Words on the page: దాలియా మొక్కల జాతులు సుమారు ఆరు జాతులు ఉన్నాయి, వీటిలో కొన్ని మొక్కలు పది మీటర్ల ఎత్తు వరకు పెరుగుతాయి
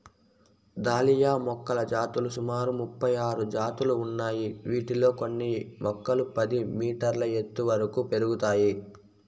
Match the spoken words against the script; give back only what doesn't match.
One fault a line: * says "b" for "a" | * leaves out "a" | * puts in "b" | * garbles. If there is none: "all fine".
* puts in "ముపై"